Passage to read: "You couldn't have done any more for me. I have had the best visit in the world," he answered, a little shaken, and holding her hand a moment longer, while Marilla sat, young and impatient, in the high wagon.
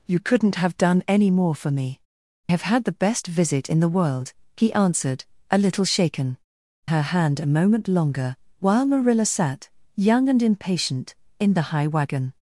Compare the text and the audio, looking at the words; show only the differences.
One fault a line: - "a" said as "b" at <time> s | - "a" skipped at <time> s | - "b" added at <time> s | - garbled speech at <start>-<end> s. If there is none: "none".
- "I" skipped at 2.0 s
- "and holding" skipped at 6.4 s